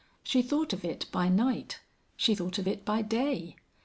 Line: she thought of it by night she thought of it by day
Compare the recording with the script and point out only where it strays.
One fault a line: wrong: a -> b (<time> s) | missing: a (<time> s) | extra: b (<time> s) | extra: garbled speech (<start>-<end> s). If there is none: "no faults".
no faults